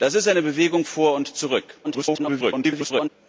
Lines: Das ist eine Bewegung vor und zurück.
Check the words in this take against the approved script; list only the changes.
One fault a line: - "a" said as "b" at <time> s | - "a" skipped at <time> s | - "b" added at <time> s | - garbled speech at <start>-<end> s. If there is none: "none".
- garbled speech at 1.8-3.1 s